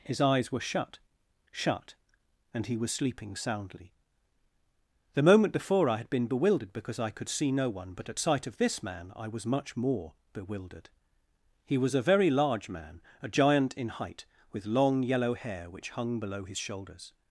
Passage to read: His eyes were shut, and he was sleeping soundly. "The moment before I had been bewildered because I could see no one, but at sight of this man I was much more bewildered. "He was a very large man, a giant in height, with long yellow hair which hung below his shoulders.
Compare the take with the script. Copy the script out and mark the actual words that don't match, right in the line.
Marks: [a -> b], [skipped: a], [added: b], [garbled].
His eyes were shut, [added: shut] and he was sleeping soundly. "The moment before I had been bewildered because I could see no one, but at sight of this man I was much more bewildered. "He was a very large man, a giant in height, with long yellow hair which hung below his shoulders.